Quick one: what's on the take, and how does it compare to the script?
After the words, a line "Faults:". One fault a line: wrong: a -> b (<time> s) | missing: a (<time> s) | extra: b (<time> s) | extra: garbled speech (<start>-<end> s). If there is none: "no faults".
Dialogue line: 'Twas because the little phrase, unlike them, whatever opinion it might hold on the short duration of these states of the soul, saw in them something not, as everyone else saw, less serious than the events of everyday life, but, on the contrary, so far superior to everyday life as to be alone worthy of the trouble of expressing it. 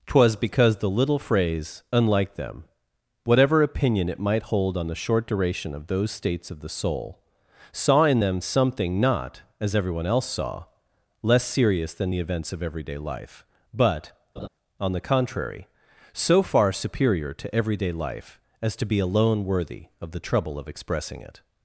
'Twas because the little phrase, unlike them, whatever opinion it might hold on the short duration of those states of the soul, saw in them something not, as everyone else saw, less serious than the events of everyday life, but, on the contrary, so far superior to everyday life as to be alone worthy of the trouble of expressing it.
Faults:
wrong: these -> those (5.9 s)